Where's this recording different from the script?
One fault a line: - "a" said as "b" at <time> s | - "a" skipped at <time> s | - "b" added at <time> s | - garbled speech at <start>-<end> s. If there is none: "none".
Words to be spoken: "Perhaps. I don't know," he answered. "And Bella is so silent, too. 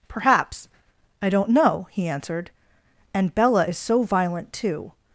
- "silent" said as "violent" at 4.0 s